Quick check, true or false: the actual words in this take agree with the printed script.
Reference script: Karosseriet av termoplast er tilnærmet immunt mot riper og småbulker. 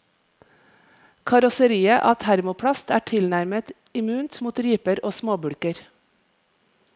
true